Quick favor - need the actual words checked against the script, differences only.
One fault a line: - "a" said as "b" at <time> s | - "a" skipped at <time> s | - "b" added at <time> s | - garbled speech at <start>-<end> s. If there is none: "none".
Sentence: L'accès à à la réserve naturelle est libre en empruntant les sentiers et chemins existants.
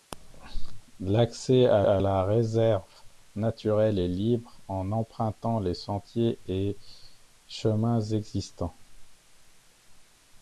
none